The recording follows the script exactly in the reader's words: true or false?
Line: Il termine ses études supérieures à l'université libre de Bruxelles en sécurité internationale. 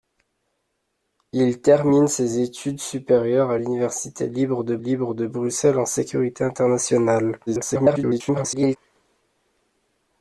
false